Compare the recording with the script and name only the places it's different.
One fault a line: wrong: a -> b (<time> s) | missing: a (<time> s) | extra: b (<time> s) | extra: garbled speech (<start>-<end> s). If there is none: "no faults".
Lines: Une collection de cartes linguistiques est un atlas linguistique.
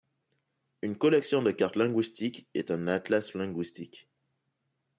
no faults